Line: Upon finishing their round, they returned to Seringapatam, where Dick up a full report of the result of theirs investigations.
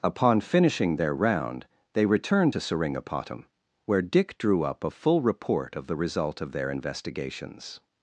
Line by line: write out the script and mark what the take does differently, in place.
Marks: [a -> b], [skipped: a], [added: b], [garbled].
Upon finishing their round, they returned to Seringapatam, where Dick [added: drew] up a full report of the result of [theirs -> their] investigations.